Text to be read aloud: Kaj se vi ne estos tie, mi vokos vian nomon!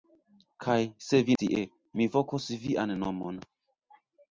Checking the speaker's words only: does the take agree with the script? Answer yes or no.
no